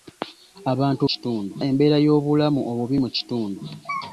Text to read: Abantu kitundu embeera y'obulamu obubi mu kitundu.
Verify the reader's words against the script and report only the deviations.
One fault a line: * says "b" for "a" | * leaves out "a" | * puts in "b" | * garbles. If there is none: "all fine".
all fine